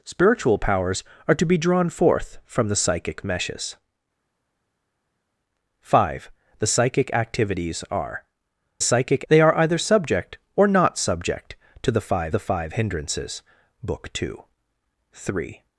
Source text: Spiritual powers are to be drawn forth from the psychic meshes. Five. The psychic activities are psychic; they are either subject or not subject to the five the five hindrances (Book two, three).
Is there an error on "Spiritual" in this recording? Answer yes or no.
no